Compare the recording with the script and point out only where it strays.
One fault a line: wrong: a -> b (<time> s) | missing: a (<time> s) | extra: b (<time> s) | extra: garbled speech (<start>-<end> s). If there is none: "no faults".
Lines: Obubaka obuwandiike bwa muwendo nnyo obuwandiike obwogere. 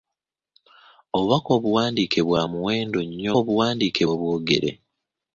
no faults